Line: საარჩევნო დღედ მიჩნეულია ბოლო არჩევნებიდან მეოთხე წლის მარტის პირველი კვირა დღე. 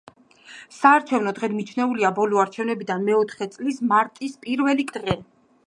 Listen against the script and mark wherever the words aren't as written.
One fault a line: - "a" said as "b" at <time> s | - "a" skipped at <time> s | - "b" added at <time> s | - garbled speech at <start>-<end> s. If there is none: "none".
- "კვირა" skipped at 4.9 s